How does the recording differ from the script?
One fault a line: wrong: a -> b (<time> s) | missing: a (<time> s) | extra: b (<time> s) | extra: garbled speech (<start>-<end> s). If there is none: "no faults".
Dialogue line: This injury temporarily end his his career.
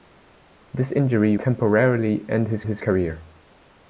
no faults